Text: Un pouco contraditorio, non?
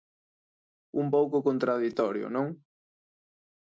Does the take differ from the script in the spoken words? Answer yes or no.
no